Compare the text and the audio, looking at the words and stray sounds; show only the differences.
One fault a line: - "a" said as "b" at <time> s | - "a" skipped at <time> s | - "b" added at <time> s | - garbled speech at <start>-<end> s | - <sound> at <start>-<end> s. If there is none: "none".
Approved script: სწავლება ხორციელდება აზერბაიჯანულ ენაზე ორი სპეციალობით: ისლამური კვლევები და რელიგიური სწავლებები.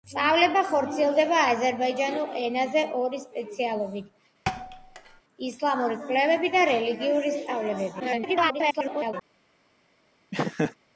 - thud at 4.5-5.2 s
- garbled speech at 8.0-9.1 s
- laugh at 10.3-10.7 s